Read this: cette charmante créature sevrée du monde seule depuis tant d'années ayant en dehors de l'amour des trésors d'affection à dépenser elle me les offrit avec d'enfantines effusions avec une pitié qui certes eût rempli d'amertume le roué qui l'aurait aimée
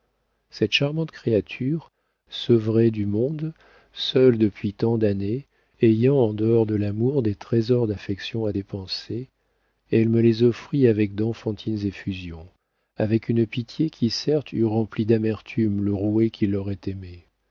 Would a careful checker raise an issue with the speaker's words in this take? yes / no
no